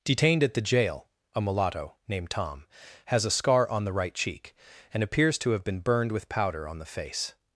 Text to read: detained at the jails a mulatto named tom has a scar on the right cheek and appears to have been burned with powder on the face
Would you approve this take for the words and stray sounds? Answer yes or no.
no